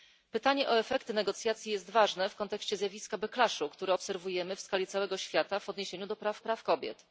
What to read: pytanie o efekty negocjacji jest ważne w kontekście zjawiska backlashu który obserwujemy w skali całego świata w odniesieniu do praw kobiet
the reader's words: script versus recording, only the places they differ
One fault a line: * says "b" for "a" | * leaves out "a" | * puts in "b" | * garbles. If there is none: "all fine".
* puts in "praw"